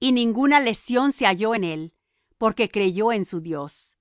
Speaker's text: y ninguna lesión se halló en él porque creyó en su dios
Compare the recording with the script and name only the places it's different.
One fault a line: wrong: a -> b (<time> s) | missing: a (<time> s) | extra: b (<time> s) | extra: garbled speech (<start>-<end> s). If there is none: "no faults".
no faults